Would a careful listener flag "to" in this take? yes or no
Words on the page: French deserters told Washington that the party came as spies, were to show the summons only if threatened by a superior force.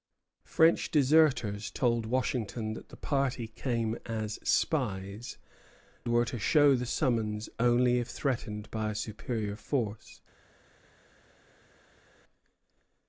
no